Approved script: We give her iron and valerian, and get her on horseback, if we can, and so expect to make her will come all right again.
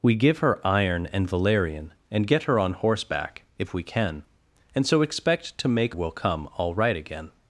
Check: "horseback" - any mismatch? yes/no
no